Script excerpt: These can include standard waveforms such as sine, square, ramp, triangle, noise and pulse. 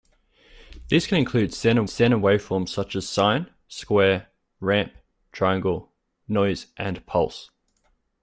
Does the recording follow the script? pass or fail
fail